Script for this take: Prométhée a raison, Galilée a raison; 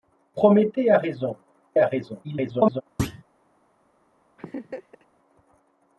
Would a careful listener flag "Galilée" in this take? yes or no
yes